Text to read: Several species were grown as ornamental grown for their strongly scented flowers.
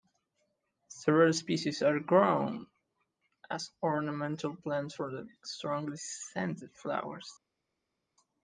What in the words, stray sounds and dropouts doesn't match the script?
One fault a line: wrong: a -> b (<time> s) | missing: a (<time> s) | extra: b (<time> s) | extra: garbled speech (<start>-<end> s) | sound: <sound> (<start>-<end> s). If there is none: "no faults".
wrong: were -> are (1.8 s)
wrong: grown -> plants (4.5 s)